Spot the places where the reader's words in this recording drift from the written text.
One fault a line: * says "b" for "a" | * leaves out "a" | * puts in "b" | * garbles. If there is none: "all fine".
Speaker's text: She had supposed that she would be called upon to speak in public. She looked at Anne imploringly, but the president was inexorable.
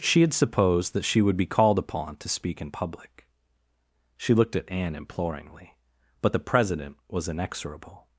all fine